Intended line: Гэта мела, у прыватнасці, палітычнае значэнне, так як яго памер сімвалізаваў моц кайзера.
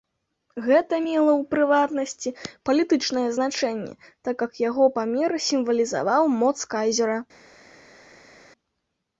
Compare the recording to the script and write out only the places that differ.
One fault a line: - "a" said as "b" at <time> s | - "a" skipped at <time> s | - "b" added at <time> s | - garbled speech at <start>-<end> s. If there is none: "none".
none